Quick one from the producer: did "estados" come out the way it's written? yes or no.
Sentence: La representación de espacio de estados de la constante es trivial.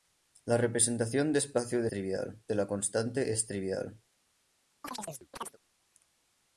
no